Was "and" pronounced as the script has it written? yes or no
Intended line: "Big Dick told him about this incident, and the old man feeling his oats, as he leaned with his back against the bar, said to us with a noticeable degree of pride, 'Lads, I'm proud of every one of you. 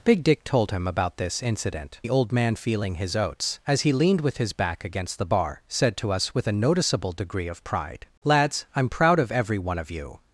no